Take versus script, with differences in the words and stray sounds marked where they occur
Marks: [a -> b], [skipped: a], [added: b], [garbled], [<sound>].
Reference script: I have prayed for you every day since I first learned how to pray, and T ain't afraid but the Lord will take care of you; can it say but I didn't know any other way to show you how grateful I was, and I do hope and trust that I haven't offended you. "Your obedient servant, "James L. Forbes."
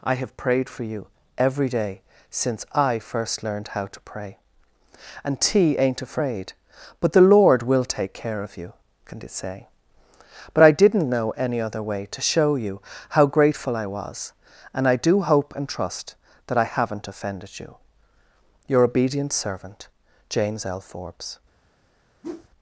I have prayed for you every day since I first learned how to pray, and T ain't afraid but the Lord will take care of you; can it say but I didn't know any other way to show you how grateful I was, and I do hope and trust that I haven't offended you. "Your obedient servant, "James L. Forbes." [whoosh]